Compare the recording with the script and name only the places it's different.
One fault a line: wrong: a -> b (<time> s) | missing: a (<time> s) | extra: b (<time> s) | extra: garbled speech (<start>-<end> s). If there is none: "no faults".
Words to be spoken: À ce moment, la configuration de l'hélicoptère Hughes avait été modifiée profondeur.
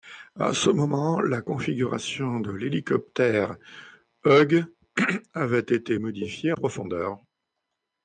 no faults